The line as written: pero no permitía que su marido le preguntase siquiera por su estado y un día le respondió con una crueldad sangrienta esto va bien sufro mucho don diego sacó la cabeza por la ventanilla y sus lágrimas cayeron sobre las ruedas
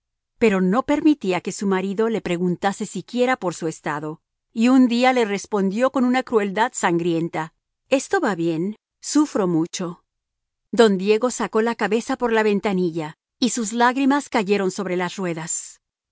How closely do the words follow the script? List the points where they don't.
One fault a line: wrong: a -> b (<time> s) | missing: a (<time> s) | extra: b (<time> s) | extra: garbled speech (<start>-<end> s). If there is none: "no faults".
no faults